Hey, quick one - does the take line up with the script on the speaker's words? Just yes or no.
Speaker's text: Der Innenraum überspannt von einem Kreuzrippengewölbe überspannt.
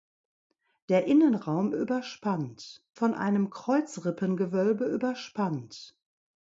yes